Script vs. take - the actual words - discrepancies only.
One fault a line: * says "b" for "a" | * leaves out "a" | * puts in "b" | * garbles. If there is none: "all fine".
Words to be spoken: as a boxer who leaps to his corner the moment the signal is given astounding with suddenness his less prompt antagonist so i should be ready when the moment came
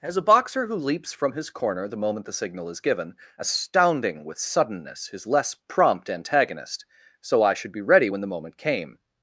* says "from" for "to"